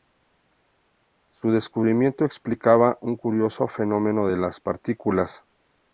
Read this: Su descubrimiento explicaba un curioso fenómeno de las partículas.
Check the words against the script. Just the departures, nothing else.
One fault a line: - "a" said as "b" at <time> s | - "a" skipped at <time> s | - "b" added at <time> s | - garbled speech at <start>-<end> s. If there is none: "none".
none